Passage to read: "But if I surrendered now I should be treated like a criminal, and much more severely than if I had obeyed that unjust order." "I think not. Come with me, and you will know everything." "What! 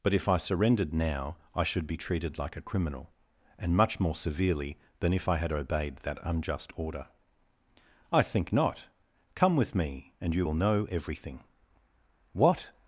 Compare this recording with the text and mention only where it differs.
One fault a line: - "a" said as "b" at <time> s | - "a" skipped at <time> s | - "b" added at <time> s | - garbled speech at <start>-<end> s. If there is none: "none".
none